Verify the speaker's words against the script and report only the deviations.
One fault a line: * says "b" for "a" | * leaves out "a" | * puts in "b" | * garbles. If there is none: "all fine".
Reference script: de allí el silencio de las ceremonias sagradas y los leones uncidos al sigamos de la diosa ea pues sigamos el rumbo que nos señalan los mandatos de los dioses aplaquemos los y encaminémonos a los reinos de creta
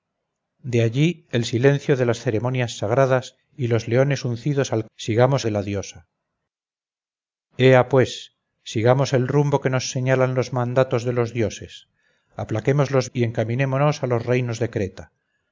all fine